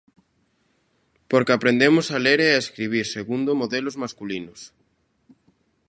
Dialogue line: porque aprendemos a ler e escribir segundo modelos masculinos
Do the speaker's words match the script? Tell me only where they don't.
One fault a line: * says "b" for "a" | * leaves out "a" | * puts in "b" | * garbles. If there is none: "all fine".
* puts in "a"